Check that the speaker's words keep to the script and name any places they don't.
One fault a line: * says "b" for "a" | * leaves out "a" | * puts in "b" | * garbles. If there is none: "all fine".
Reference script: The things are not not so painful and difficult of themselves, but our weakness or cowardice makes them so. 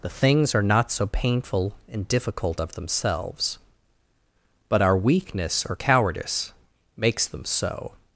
* leaves out "not"